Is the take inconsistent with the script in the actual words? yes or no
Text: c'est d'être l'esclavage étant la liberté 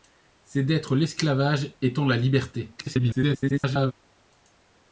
yes